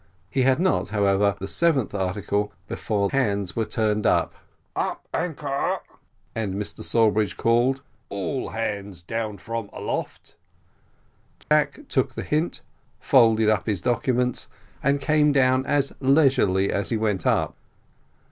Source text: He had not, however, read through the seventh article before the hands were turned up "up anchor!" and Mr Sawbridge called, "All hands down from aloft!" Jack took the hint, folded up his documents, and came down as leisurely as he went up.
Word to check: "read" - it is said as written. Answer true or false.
false